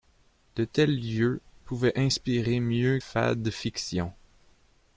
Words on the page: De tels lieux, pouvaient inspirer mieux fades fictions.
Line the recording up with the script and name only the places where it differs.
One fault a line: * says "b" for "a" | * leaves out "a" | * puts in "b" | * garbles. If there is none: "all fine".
all fine